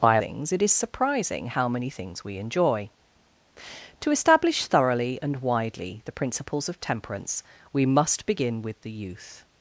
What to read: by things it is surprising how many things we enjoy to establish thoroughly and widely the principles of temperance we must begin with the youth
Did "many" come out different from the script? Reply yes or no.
no